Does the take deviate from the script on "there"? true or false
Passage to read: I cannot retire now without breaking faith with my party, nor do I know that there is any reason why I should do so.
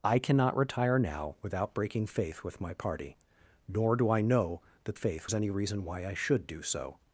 true